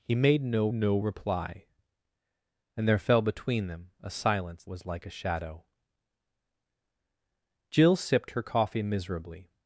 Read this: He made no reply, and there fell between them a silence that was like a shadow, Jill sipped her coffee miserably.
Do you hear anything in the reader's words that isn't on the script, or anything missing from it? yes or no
yes